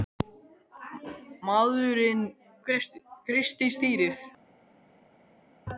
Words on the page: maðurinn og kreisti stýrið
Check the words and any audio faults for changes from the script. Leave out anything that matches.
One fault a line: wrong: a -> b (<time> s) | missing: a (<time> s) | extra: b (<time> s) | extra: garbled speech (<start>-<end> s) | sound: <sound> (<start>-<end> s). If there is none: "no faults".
no faults